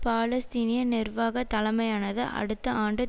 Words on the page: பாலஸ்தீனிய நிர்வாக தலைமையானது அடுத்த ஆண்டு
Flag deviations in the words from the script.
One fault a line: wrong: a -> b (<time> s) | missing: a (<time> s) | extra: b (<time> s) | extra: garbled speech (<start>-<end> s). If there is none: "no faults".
no faults